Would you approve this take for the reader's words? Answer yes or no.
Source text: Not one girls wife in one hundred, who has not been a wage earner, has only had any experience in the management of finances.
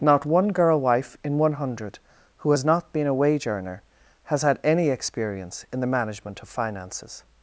no